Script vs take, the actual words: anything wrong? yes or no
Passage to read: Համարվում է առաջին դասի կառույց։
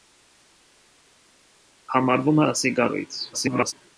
yes